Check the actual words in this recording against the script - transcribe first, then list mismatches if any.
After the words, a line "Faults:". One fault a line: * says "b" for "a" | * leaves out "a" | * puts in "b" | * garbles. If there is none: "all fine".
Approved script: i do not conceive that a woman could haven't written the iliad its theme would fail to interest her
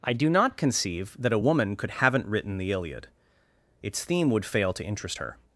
i do not conceive that a woman could haven't written the iliad its theme would fail to interest her
Faults:
all fine